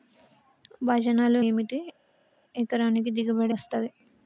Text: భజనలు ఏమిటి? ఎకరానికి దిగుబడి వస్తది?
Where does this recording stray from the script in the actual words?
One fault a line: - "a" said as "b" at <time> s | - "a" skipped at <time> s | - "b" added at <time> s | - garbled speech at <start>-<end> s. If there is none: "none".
none